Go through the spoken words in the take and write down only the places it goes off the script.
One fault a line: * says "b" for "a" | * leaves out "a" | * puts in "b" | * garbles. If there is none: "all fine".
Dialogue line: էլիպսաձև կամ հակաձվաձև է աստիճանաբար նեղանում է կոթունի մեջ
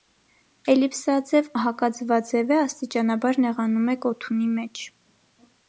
* leaves out "կամ"